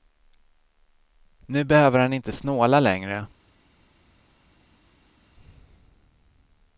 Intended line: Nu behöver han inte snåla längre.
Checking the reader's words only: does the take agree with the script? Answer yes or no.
yes